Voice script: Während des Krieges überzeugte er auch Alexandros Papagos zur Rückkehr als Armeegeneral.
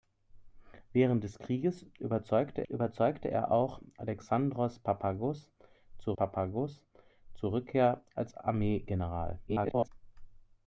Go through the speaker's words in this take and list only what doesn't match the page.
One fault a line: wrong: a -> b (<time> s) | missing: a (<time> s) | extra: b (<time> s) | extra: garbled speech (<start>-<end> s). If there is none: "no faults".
extra: überzeugte (2.7 s)
extra: Papagos zur (6.1 s)
extra: garbled speech (9.5-9.9 s)